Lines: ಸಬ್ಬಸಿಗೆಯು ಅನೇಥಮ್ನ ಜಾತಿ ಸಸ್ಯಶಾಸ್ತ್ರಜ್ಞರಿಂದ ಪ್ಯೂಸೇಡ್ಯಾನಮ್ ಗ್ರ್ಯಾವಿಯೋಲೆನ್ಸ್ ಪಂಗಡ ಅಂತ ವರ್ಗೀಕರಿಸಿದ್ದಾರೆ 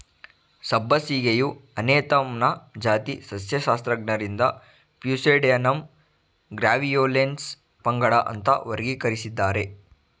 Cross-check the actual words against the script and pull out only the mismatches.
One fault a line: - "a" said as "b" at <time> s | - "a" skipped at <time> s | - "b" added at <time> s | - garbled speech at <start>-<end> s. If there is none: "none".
none